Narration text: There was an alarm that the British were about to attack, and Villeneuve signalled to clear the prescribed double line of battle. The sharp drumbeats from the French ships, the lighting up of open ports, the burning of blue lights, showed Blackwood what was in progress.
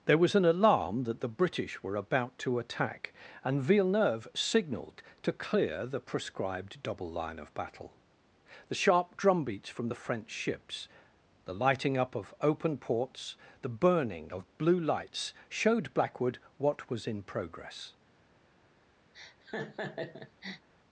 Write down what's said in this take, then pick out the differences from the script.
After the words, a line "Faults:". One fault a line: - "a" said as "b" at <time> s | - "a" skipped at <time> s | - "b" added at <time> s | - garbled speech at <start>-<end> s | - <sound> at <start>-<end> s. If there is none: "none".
There was an alarm that the British were about to attack, and Villeneuve signalled to clear the prescribed double line of battle. The sharp drumbeats from the French ships, the lighting up of open ports, the burning of blue lights, showed Blackwood what was in progress.
Faults:
- laugh at 19.1-20.7 s